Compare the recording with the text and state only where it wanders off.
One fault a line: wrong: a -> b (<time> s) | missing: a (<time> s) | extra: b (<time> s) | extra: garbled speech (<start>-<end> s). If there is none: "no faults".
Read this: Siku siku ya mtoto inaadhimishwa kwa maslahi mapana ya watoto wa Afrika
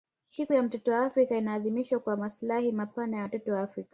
missing: siku (0.5 s)
extra: wa Afrika (0.9 s)